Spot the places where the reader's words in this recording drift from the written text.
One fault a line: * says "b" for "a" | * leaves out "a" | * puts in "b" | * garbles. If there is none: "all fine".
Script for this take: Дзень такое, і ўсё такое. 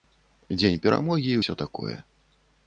* says "перамогі" for "такое"